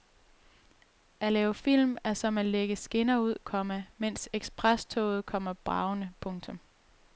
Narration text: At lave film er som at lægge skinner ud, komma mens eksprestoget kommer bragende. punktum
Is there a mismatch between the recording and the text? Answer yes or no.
no